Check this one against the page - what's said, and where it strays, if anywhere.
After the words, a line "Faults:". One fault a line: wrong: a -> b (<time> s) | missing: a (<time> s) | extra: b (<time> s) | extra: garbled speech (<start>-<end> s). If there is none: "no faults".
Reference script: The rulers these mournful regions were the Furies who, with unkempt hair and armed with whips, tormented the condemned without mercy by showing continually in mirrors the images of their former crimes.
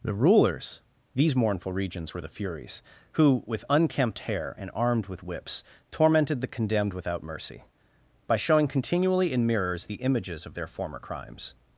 The rulers these mournful regions were the Furies who, with unkempt hair and armed with whips, tormented the condemned without mercy by showing continually in mirrors the images of their former crimes.
Faults:
no faults